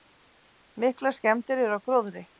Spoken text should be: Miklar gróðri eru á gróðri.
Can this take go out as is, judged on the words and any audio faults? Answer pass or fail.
fail